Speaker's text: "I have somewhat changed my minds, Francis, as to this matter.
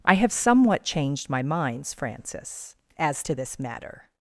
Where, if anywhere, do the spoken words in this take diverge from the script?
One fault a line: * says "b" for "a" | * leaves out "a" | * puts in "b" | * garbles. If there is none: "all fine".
all fine